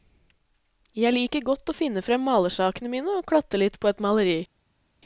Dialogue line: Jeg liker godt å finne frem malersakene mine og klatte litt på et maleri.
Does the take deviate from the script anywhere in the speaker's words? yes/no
no